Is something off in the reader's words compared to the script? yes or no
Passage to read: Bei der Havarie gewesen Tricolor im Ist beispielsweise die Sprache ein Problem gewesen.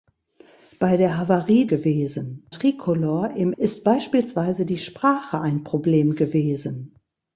no